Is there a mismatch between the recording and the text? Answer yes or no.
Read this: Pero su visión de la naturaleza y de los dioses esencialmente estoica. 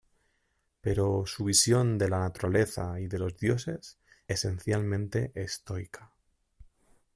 no